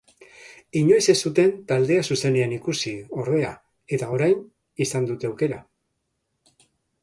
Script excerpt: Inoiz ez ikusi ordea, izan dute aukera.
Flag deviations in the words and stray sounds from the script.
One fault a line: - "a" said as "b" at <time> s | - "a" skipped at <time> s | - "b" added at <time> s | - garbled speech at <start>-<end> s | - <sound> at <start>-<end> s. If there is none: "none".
- "zuten taldea zuzenean" added at 1.3 s
- "eta orain" added at 4.0 s